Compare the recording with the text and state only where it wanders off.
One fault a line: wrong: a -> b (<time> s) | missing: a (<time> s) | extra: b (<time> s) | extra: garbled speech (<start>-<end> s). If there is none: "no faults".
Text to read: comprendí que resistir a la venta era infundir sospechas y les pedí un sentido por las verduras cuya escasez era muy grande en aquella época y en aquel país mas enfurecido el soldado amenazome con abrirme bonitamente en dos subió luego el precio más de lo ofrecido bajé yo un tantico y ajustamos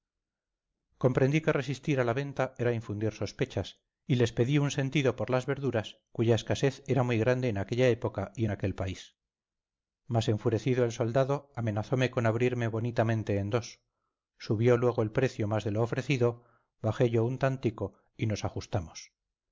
extra: nos (18.3 s)